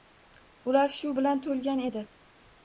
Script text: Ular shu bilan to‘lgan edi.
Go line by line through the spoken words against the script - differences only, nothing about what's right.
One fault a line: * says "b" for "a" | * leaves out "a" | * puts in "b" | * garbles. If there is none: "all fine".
all fine